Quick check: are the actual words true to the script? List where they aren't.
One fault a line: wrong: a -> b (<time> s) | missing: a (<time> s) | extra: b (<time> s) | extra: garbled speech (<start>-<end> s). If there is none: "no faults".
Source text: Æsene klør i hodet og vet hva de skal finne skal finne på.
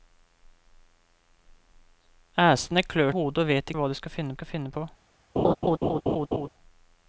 no faults